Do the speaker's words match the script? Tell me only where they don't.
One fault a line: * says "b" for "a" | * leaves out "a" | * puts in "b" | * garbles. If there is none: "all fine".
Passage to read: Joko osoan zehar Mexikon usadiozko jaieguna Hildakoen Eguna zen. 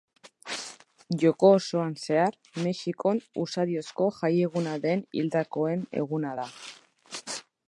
* puts in "den"
* says "da" for "zen"